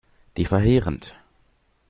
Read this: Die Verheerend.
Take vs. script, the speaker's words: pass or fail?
pass